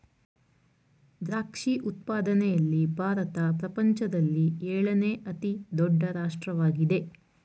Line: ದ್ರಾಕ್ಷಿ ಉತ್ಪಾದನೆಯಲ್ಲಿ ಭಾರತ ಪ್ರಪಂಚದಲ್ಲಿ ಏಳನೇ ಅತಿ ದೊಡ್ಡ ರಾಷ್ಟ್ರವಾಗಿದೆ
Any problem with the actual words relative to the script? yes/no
no